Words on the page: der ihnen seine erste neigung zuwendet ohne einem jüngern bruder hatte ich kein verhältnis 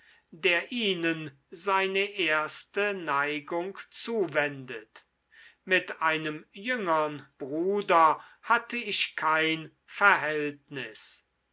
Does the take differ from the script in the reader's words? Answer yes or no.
yes